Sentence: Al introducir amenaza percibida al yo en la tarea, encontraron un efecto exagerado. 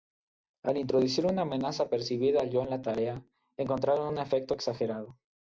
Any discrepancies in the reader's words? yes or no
yes